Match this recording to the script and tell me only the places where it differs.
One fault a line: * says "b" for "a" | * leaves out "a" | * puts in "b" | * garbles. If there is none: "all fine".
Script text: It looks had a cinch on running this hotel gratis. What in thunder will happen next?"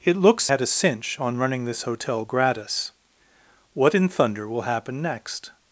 all fine